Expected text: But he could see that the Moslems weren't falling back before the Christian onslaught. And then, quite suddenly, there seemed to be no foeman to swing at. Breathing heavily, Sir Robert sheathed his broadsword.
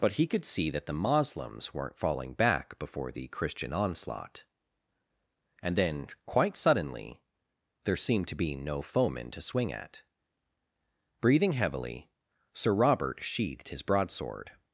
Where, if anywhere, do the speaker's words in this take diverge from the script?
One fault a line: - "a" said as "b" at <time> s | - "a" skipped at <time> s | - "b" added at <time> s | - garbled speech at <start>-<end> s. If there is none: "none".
none